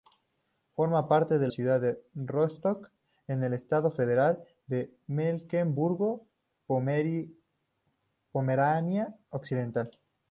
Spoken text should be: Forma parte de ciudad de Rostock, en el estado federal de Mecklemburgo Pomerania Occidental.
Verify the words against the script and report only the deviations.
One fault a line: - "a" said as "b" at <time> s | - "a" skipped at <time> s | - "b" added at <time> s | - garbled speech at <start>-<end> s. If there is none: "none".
none